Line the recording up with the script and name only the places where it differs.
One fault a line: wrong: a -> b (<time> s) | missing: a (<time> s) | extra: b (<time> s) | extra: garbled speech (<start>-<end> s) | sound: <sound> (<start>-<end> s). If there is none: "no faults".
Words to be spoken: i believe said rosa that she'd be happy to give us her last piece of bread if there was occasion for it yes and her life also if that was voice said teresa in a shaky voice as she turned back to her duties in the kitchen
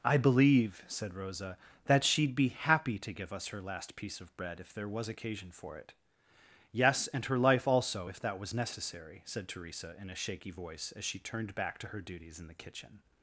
wrong: voice -> necessary (8.5 s)